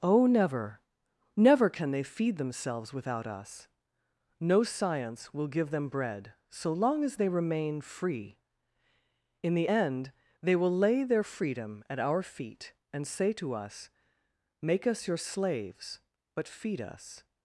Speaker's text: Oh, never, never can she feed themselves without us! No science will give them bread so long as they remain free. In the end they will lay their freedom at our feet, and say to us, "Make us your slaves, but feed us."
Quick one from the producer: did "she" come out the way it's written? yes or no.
no